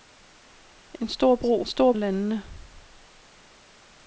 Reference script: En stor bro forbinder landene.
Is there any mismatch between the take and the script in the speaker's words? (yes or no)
yes